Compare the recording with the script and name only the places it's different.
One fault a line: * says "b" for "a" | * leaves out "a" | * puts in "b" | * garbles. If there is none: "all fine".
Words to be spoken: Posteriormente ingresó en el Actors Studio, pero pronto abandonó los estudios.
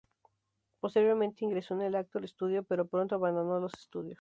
all fine